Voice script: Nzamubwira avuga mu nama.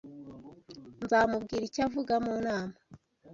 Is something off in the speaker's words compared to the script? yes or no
yes